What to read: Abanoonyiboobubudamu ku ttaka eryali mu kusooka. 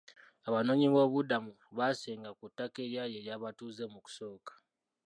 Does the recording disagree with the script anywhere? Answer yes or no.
yes